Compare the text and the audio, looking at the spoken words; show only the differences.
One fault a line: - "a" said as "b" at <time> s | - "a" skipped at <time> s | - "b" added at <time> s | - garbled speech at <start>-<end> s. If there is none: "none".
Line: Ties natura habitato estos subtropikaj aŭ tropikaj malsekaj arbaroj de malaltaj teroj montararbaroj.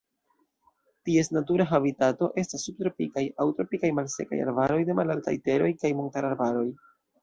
- "estos" said as "estas" at 2.5 s
- "kaj" added at 5.8 s